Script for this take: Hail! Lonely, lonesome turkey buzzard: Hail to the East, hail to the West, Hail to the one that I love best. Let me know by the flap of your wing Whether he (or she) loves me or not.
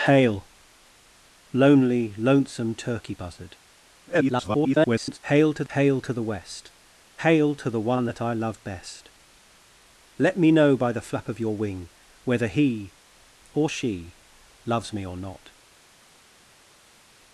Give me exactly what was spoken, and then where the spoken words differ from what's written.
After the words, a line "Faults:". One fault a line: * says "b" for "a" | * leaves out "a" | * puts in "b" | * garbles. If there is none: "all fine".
Hail! Lonely, lonesome turkey buzzard: [garbled] Hail to hail to the West, Hail to the one that I love best. Let me know by the flap of your wing Whether he (or she) loves me or not.
Faults:
* garbles
* leaves out "the East"